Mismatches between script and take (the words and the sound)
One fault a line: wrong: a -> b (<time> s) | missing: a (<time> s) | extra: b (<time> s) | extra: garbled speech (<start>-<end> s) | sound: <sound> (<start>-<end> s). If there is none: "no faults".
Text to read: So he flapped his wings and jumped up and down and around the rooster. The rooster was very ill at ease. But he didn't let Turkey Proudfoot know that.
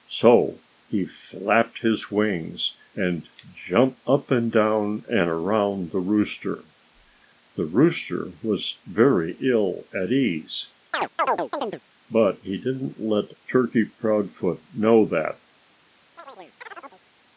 sound: chirp (10.9-11.8 s)
sound: chirp (16.2-17.0 s)